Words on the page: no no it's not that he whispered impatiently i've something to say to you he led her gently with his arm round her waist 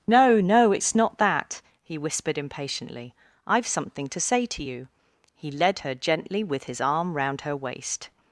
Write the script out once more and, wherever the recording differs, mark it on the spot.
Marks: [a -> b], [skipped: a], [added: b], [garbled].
no no it's not that he whispered impatiently i've something to say to you he led her gently with his arm round her waist